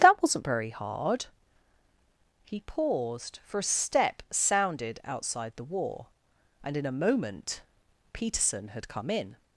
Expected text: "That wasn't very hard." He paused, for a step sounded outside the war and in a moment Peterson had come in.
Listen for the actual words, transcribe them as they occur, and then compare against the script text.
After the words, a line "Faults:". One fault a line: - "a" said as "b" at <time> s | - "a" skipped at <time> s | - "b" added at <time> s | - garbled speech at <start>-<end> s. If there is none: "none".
"That wasn't very hard." He paused, for a step sounded outside the war and in a moment Peterson had come in.
Faults:
none